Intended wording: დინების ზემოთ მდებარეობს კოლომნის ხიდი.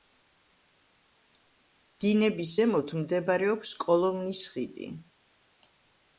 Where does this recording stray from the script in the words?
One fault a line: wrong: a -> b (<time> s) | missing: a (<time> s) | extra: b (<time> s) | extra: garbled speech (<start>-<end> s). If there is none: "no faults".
no faults